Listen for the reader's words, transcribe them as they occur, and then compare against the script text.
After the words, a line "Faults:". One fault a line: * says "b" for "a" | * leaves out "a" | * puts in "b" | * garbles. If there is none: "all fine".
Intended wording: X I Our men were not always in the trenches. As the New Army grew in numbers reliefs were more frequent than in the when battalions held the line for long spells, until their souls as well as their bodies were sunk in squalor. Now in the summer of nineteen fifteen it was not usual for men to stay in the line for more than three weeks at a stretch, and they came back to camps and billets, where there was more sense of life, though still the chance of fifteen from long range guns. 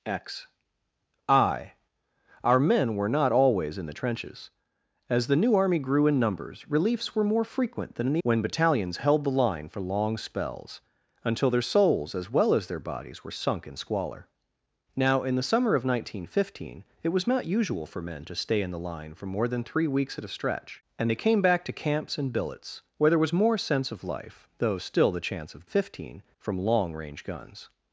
X I Our men were not always in the trenches. As the New Army grew in numbers reliefs were more frequent than in the when battalions held the line for long spells, until their souls as well as their bodies were sunk in squalor. Now in the summer of nineteen fifteen it was not usual for men to stay in the line for more than three weeks at a stretch, and they came back to camps and billets, where there was more sense of life, though still the chance of fifteen from long range guns.
Faults:
all fine